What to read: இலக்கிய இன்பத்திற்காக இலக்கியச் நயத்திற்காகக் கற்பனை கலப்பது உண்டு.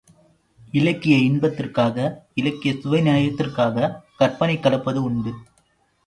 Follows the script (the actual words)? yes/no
no